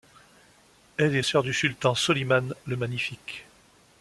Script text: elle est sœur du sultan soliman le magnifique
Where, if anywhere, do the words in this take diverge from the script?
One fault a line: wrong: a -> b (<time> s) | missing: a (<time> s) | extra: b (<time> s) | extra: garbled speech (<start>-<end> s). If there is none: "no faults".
no faults